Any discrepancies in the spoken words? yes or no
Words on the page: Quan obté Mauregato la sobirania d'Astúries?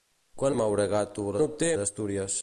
yes